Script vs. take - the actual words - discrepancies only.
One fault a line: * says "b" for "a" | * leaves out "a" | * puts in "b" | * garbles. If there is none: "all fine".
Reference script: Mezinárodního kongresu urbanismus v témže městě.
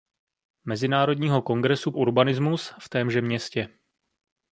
all fine